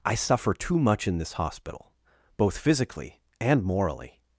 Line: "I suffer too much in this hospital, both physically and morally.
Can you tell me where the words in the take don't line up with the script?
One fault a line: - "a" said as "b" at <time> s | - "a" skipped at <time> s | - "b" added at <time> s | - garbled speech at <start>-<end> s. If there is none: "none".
none